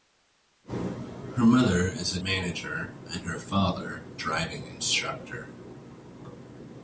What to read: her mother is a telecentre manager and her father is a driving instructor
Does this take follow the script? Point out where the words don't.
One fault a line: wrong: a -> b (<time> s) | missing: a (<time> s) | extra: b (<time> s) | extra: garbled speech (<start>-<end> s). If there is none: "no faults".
missing: telecentre (2.2 s)
missing: is a (4.0 s)